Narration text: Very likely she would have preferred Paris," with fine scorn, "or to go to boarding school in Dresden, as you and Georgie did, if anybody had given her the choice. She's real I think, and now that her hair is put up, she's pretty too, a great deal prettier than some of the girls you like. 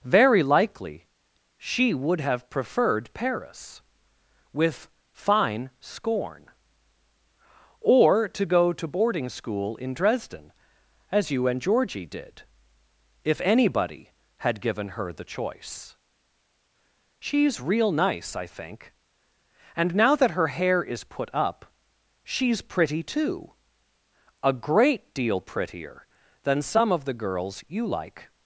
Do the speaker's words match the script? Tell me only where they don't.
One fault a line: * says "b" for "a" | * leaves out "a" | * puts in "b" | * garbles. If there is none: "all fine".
* puts in "nice"